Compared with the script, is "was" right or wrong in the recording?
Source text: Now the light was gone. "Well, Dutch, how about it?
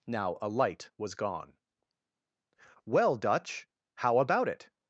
right